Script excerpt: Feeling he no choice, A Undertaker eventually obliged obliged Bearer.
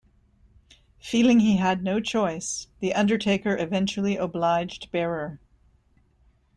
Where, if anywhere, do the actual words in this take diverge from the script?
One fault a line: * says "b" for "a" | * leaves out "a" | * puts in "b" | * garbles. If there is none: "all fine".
* puts in "had"
* says "The" for "A"
* leaves out "obliged"